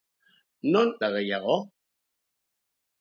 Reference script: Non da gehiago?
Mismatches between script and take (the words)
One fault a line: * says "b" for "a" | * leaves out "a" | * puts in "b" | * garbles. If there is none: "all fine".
all fine